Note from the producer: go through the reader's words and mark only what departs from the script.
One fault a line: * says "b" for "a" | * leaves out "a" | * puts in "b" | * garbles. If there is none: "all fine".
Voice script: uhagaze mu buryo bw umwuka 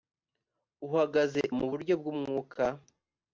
all fine